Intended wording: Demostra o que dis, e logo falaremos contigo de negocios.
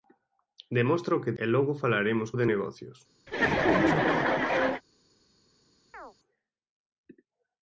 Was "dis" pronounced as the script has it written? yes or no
no